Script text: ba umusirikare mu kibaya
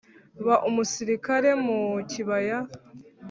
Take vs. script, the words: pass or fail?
pass